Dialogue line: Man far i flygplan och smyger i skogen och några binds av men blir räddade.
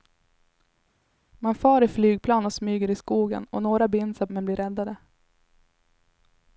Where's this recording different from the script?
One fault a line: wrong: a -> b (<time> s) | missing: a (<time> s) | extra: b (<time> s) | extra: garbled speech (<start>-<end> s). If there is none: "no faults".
no faults